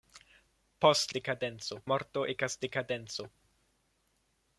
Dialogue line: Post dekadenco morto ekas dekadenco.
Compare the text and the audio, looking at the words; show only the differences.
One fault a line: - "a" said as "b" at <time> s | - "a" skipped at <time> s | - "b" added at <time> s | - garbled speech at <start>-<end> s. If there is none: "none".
none